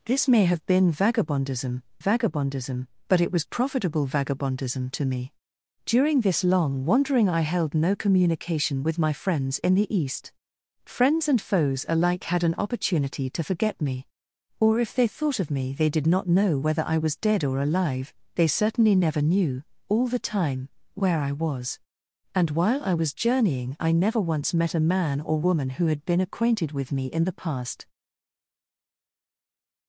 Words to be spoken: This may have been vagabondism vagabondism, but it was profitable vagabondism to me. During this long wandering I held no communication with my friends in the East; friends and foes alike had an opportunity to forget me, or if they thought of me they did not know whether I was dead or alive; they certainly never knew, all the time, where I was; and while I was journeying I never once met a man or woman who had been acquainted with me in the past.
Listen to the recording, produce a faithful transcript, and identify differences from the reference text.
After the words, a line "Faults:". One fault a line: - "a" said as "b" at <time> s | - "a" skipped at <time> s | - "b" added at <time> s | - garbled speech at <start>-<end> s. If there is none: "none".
This may have been vagabondism vagabondism, but it was profitable vagabondism to me. During this long wandering I held no communication with my friends in the East; friends and foes alike had an opportunity to forget me, or if they thought of me they did not know whether I was dead or alive; they certainly never knew, all the time, where I was; and while I was journeying I never once met a man or woman who had been acquainted with me in the past.
Faults:
none